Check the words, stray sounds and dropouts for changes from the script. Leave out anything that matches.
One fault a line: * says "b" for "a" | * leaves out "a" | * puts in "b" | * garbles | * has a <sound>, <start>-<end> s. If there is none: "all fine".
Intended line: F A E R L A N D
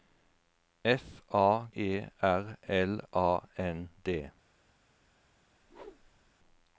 * has a whoosh, 5.6-6.3 s